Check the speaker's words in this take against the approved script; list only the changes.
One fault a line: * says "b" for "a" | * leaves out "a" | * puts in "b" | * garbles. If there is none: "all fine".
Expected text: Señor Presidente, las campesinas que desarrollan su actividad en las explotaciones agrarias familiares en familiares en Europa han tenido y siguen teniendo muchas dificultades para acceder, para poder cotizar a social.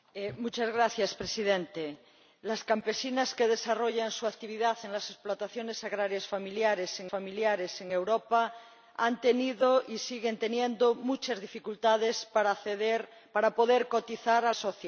all fine